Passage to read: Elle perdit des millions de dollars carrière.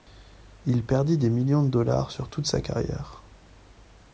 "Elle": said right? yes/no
no